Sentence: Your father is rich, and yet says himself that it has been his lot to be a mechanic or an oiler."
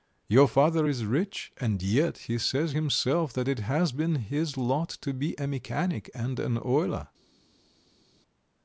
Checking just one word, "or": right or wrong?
wrong